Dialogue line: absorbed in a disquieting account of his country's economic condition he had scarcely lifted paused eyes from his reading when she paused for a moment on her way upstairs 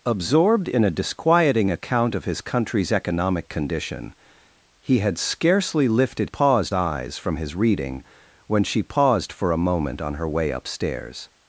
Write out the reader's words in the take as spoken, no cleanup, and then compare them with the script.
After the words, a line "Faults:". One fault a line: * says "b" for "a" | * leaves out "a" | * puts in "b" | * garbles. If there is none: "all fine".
absorbed in a disquieting account of his country's economic condition he had scarcely lifted paused eyes from his reading when she paused for a moment on her way upstairs
Faults:
all fine